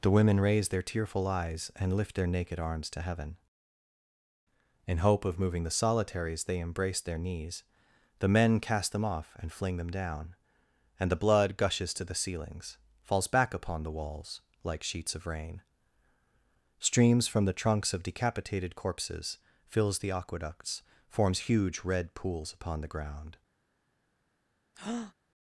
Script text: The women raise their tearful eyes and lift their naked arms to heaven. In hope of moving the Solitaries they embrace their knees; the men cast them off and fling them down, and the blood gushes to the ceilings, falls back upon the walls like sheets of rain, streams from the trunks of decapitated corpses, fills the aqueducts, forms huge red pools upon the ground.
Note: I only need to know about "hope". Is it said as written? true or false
true